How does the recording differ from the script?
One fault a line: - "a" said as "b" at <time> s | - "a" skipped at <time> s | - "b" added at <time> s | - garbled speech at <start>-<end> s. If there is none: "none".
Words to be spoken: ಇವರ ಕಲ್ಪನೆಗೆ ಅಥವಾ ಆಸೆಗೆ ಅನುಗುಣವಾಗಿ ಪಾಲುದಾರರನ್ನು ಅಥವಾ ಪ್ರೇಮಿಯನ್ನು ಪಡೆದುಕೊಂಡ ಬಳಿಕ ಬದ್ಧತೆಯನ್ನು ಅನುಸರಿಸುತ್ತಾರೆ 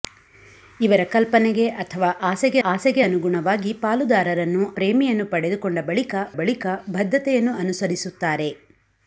- "ಆಸೆಗೆ" added at 2.6 s
- "ಅಥವಾ" skipped at 4.6 s
- "ಬಳಿಕ" added at 6.4 s